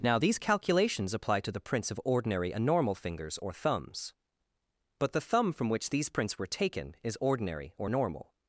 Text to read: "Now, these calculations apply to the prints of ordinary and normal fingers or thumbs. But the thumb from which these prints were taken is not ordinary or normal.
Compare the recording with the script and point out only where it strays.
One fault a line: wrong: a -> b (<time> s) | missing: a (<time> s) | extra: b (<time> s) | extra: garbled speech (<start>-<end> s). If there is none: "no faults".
missing: not (7.2 s)